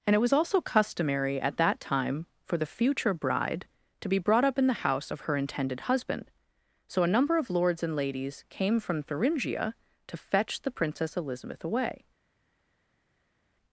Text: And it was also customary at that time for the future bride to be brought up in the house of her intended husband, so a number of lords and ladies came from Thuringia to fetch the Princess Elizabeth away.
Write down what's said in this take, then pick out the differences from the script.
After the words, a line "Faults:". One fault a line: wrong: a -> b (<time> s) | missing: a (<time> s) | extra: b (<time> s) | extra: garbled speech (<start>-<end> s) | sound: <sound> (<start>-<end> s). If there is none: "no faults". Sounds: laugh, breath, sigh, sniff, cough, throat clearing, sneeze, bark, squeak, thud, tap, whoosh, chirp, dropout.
And it was also customary at that time for the future bride to be brought up in the house of her intended husband, so a number of lords and ladies came from Thuringia to fetch the Princess Elizabeth away.
Faults:
no faults